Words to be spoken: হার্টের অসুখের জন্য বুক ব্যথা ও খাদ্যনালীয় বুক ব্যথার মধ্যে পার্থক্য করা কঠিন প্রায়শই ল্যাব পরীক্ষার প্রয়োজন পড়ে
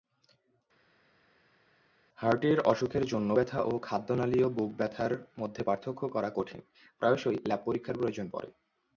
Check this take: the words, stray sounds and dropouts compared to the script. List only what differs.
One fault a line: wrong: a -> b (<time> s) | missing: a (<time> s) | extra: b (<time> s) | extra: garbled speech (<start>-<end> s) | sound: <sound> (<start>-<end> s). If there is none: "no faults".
missing: বুক (3.3 s)